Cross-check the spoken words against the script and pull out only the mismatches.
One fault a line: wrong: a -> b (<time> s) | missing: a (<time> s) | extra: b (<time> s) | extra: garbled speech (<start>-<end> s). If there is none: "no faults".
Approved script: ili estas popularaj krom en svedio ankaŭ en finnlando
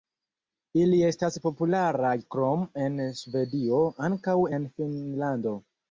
no faults